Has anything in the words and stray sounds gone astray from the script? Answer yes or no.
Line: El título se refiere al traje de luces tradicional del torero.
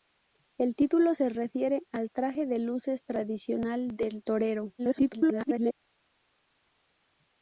yes